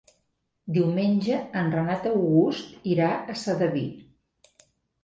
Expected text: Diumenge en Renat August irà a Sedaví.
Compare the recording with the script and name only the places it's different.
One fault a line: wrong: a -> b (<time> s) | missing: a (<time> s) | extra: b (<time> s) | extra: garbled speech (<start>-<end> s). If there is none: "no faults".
no faults